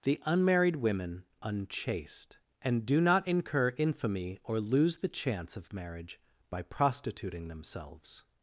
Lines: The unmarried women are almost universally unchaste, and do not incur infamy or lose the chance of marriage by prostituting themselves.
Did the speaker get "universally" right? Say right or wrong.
wrong